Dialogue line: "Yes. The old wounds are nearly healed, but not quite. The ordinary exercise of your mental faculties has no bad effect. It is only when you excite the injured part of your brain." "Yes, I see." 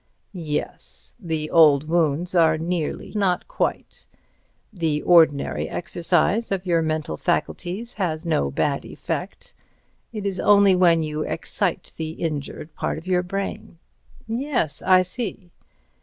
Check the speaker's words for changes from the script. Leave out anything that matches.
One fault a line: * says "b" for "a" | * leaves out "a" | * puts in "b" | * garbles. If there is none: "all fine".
* leaves out "healed but"